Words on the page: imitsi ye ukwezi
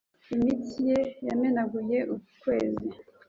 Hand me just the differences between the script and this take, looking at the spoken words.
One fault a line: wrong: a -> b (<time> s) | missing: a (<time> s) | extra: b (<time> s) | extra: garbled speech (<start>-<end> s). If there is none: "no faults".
extra: yamenaguye (1.3 s)